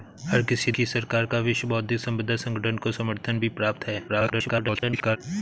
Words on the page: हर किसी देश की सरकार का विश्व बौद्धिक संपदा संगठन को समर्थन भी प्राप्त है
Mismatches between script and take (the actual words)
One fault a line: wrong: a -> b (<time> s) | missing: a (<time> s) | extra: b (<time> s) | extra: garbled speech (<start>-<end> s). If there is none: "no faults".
missing: देश (0.7 s)
extra: garbled speech (4.1-5.2 s)